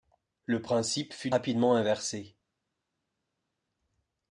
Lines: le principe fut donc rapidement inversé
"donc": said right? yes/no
no